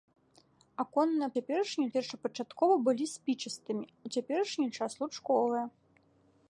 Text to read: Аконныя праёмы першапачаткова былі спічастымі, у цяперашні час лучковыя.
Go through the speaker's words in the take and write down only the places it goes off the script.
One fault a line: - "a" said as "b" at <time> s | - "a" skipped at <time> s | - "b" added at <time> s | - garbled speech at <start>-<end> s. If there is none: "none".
- "праёмы" said as "цяперашні" at 1.4 s